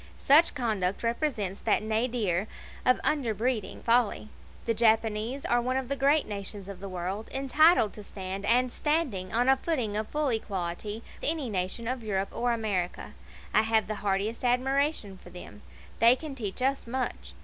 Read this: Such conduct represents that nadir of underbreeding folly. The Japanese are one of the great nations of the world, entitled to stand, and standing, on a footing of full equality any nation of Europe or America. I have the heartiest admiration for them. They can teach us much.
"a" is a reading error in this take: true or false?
false